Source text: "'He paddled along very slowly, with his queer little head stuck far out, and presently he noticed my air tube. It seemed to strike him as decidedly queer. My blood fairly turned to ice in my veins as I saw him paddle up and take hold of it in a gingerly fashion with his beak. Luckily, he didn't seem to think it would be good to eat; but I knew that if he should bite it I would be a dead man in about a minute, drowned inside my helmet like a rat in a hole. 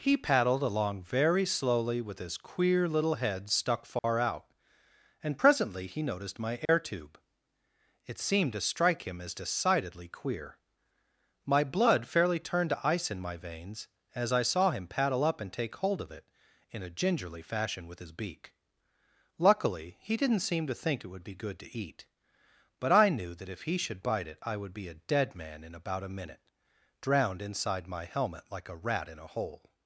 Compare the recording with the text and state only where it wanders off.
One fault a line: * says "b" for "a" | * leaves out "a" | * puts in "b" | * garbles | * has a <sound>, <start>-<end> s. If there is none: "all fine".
* has a dropout, 4.0-4.0 s
* has a dropout, 6.7-6.7 s